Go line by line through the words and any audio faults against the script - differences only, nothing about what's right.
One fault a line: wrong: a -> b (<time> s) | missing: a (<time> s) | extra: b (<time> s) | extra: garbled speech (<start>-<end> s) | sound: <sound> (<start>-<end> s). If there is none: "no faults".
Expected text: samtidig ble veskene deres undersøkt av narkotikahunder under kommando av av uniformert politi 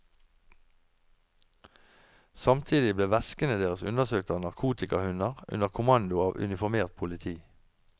missing: av (6.4 s)